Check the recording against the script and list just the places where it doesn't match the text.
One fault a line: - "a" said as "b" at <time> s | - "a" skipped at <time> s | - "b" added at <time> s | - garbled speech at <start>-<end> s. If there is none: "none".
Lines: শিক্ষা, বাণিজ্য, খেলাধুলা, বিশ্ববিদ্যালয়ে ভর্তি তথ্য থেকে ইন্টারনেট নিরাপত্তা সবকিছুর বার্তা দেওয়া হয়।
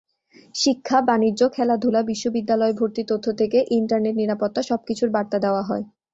none